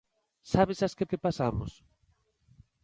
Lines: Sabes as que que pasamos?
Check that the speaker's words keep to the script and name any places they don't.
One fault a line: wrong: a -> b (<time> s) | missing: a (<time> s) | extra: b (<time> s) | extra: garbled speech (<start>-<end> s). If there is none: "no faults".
no faults